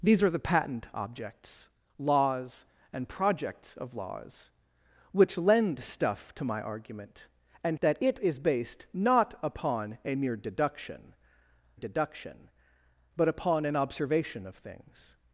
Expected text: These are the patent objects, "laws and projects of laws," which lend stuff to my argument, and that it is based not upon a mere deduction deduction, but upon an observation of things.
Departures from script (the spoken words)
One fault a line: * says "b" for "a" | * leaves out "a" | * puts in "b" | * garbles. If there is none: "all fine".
all fine